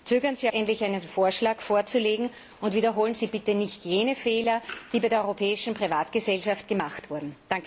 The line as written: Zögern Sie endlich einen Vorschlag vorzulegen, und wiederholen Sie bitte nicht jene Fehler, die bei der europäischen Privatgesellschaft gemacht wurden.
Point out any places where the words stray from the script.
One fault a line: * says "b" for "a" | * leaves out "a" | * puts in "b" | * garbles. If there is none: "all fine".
all fine